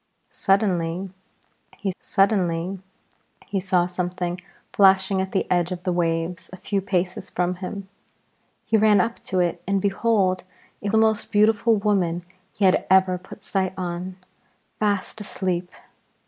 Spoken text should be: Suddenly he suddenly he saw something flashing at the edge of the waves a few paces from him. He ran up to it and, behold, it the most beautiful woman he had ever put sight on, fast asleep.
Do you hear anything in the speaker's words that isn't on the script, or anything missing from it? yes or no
no